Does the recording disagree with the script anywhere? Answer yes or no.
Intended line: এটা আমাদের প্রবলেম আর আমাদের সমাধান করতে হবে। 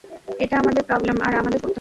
yes